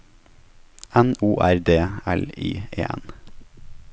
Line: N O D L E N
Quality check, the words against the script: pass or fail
fail